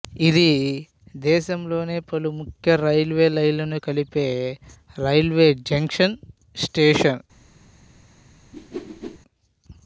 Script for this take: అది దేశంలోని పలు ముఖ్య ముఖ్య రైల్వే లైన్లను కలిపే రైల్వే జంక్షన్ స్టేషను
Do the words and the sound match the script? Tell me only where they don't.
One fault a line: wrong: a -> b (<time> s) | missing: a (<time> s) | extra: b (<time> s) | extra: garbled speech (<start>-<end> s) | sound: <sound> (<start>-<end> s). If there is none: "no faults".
wrong: అది -> ఇది (0.3 s)
missing: ముఖ్య (2.8 s)
sound: whoosh (8.5-9.2 s)